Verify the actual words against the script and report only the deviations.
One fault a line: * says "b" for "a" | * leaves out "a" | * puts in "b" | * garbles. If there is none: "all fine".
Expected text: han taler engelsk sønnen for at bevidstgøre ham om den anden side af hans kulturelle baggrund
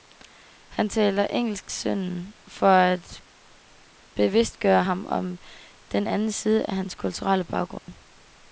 all fine